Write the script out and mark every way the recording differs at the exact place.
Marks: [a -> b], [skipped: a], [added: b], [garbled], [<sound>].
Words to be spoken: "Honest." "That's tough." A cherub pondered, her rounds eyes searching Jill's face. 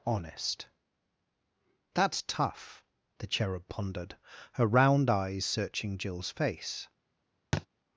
"Honest." "That's tough." [A -> The] cherub pondered, her [rounds -> round] eyes searching Jill's face. [thud]